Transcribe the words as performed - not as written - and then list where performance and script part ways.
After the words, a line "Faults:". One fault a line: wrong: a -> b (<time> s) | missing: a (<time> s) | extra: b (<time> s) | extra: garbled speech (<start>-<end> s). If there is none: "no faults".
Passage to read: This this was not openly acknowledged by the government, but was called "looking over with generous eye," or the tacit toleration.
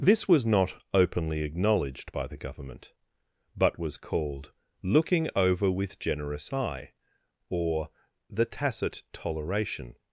This was not openly acknowledged by the government, but was called "looking over with generous eye," or the tacit toleration.
Faults:
missing: this (0.3 s)